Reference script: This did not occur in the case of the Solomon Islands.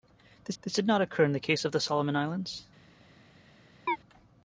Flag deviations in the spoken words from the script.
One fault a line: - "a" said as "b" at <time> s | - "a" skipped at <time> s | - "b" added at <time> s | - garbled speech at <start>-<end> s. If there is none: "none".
- "this" added at 0.6 s